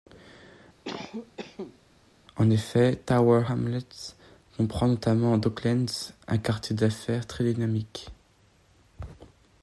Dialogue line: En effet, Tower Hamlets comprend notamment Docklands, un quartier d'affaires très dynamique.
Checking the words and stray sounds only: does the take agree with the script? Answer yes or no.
no